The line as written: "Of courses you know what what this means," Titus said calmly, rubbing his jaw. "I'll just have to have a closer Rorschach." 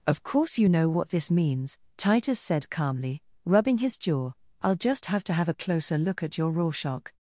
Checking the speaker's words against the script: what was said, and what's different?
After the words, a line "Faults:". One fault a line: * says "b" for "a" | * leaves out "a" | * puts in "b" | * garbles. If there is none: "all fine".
"Of course you know what this means," Titus said calmly, rubbing his jaw. "I'll just have to have a closer look at your Rorschach."
Faults:
* says "course" for "courses"
* leaves out "what"
* puts in "look at your"